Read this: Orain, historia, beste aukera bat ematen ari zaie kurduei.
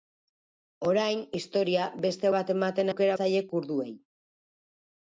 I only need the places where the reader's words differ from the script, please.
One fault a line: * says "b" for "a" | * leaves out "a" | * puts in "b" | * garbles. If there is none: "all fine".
* leaves out "aukera"
* says "aukera" for "ari"